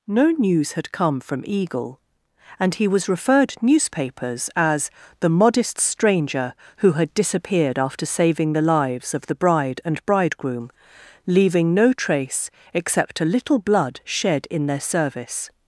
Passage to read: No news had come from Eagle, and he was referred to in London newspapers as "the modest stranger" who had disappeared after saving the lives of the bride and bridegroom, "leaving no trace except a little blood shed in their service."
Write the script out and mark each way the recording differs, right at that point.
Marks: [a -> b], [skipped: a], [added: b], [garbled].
No news had come from Eagle, and he was referred [skipped: to in London] newspapers as "the modest stranger" who had disappeared after saving the lives of the bride and bridegroom, "leaving no trace except a little blood shed in their service."